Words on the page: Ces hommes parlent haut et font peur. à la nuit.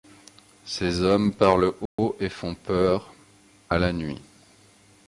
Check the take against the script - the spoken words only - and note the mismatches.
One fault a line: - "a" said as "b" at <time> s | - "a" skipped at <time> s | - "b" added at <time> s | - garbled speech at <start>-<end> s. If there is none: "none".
none